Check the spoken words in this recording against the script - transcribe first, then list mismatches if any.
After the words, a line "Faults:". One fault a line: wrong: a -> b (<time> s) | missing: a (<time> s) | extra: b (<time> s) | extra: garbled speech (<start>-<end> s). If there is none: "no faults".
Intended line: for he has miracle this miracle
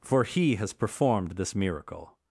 for he has performed this miracle
Faults:
wrong: miracle -> performed (0.7 s)